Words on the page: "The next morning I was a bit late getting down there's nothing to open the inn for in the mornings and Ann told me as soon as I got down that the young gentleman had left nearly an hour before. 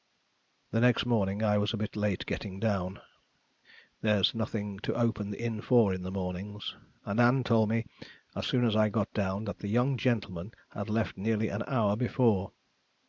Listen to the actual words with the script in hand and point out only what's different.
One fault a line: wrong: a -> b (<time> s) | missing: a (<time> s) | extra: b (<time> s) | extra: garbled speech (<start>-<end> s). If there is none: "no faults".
no faults